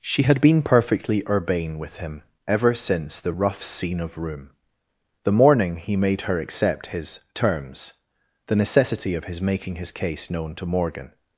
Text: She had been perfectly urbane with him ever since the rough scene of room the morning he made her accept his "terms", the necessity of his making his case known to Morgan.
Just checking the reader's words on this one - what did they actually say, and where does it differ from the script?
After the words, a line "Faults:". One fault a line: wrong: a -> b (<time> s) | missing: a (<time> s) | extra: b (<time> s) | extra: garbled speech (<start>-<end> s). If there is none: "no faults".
She had been perfectly urbane with him ever since the rough scene of room the morning he made her accept his "terms", the necessity of his making his case known to Morgan.
Faults:
no faults